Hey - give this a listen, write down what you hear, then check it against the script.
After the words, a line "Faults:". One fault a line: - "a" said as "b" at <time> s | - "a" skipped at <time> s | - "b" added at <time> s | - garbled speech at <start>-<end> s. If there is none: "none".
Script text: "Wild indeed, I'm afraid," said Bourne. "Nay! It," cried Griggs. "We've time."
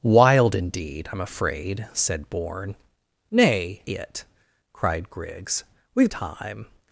"Wild indeed, I'm afraid," said Bourne. "Nay! It," cried Griggs. "We've time."
Faults:
none